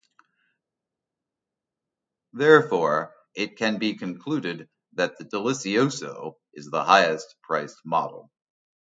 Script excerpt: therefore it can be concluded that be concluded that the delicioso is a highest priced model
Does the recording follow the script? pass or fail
fail